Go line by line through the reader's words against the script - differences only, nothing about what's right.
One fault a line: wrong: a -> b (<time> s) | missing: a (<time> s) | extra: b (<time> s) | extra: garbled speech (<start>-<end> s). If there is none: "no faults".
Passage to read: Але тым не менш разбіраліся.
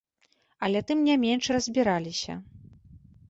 no faults